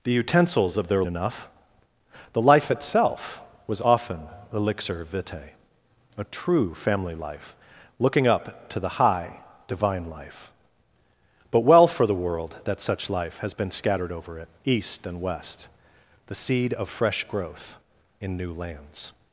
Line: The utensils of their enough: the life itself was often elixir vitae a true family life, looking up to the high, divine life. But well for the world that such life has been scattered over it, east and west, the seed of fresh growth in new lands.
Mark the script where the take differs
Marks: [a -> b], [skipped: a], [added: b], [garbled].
The utensils of their enough: the life itself was often elixir vitae a true family life, looking up to the high, divine life. But well for the world that such life has been scattered over it, east and west, the seed of fresh growth in new lands.